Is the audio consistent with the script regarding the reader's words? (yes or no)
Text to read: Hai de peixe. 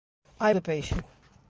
yes